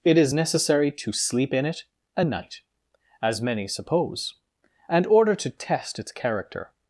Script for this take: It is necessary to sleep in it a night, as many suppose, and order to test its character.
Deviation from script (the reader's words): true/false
false